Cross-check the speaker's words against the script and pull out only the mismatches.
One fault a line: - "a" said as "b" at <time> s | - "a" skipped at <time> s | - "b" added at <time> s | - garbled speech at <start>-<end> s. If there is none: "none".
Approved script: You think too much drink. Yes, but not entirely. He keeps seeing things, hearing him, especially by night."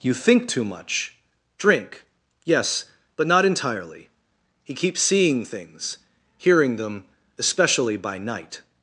- "him" said as "them" at 6.8 s